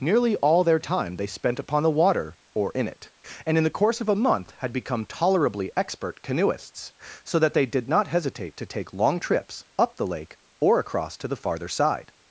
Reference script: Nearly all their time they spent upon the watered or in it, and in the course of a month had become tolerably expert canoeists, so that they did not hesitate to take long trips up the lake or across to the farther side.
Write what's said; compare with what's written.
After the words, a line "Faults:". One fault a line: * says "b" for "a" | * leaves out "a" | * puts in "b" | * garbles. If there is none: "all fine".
Nearly all their time they spent upon the water or in it, and in the course of a month had become tolerably expert canoeists, so that they did not hesitate to take long trips up the lake or across to the farther side.
Faults:
* says "water" for "watered"